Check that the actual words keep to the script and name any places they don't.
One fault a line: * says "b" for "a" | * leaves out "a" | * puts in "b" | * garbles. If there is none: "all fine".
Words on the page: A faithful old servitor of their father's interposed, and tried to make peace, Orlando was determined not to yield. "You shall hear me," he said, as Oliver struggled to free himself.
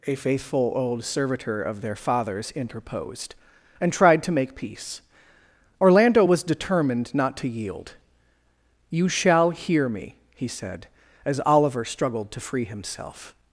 all fine